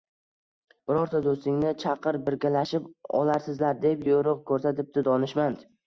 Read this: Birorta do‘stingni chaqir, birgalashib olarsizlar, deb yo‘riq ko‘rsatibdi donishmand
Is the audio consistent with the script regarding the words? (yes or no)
yes